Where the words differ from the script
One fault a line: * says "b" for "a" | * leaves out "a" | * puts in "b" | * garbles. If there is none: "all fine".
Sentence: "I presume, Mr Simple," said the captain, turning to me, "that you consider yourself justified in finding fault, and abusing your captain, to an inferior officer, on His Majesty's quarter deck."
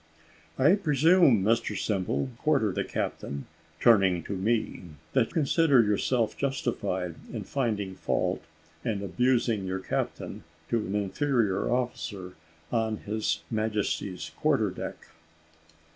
* says "quarter" for "said"
* leaves out "you"